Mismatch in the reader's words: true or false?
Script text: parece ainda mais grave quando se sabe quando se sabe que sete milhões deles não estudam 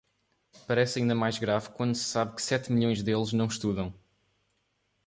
true